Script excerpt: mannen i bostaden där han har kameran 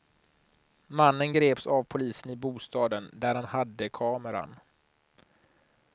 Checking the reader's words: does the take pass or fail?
fail